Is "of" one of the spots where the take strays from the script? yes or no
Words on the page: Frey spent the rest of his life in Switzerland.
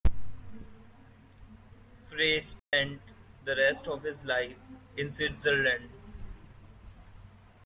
no